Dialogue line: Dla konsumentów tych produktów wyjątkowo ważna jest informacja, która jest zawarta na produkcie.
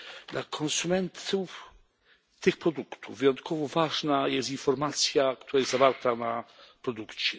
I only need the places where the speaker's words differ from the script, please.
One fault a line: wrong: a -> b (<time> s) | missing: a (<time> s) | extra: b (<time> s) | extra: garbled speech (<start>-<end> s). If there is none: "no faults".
no faults